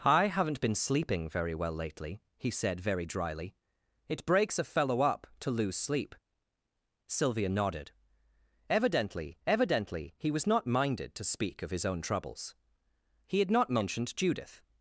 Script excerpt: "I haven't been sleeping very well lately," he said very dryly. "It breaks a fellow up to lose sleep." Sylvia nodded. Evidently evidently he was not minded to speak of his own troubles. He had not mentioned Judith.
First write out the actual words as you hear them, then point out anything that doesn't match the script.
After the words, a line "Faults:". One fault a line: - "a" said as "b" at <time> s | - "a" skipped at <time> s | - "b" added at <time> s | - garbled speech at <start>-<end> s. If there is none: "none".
"I haven't been sleeping very well lately," he said very dryly. "It breaks a fellow up to lose sleep." Sylvia nodded. Evidently evidently he was not minded to speak of his own troubles. He had not mentioned Judith.
Faults:
none